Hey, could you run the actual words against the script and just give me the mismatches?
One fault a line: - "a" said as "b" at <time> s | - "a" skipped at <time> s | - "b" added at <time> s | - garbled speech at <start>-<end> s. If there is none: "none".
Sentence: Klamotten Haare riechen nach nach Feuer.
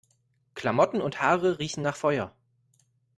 - "und" added at 1.0 s
- "nach" skipped at 2.0 s